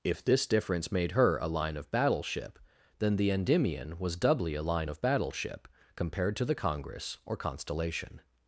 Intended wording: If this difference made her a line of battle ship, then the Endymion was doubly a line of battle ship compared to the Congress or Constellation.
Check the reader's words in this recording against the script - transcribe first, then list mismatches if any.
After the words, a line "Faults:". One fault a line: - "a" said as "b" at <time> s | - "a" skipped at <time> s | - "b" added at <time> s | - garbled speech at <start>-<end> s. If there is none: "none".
If this difference made her a line of battle ship, then the Endymion was doubly a line of battle ship compared to the Congress or Constellation.
Faults:
none